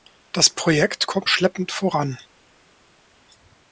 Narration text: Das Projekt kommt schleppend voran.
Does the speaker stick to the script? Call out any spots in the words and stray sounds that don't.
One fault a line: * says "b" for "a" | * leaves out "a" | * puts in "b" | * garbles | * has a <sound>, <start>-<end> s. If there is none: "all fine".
all fine